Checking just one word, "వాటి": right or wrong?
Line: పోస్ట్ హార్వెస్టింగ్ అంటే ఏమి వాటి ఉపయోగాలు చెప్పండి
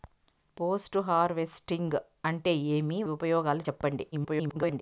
wrong